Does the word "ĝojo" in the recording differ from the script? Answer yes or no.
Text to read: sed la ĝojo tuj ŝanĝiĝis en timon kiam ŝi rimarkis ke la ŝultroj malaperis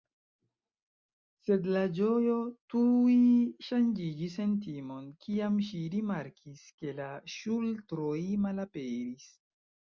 no